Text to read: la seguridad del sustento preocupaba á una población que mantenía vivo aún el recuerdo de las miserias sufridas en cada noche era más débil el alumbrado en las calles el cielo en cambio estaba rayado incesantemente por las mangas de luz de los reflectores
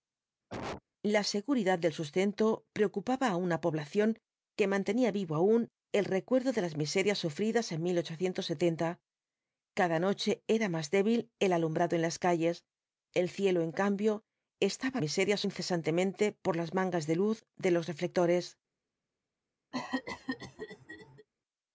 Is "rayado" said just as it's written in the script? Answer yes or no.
no